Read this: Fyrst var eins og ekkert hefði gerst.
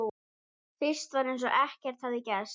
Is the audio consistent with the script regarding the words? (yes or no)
yes